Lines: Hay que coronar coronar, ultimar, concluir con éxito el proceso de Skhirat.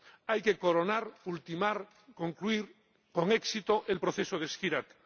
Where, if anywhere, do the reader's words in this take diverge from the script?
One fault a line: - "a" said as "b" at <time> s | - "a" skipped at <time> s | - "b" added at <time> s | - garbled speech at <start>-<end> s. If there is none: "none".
- "coronar" skipped at 1.1 s